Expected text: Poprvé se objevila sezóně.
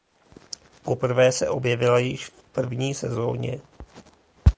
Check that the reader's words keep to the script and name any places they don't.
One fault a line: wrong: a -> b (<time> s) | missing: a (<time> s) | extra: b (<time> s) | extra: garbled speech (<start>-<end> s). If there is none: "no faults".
extra: již v první (2.0 s)